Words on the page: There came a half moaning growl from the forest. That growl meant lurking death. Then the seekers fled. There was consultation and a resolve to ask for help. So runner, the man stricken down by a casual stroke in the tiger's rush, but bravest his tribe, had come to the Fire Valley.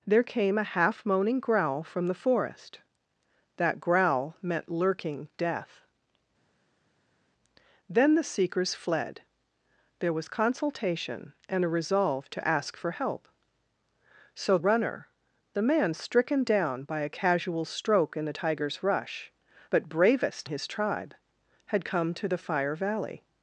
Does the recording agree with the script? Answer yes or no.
yes